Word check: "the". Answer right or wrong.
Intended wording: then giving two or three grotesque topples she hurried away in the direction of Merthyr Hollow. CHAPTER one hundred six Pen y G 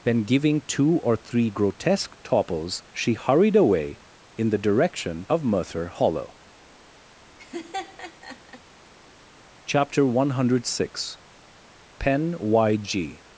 right